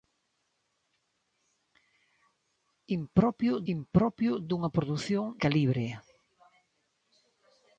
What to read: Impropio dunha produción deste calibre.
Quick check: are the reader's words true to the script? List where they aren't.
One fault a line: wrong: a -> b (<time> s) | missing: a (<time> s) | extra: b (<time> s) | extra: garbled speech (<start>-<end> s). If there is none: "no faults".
extra: impropio (3.7 s)
missing: deste (5.2 s)